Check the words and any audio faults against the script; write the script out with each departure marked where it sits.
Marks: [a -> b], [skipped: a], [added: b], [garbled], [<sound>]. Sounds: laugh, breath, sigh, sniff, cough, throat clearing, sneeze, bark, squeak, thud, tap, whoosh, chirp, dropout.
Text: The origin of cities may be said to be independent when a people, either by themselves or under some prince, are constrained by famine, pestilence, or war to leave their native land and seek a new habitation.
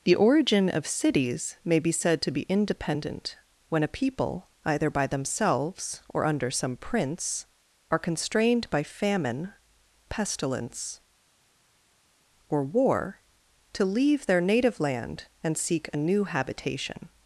The origin of cities may be said to be independent when a people, either by themselves or under some prince, are constrained by famine, pestilence, or war to leave their native land and seek a new habitation.